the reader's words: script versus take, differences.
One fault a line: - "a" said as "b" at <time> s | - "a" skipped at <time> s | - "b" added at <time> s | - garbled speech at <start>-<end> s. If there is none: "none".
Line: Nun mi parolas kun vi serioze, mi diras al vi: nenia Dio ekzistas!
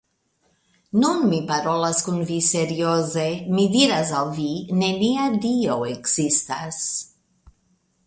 none